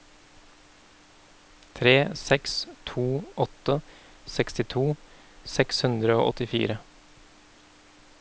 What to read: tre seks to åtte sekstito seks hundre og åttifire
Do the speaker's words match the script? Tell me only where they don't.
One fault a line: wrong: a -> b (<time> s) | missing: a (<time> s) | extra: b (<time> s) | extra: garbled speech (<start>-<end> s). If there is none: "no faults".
no faults